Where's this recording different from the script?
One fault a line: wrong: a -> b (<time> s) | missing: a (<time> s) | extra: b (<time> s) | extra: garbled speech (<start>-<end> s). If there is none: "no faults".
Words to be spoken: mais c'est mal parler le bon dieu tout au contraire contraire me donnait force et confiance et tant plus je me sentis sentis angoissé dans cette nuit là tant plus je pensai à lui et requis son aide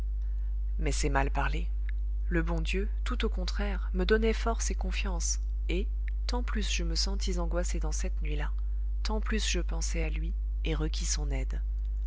missing: contraire (3.9 s)
missing: sentis (7.4 s)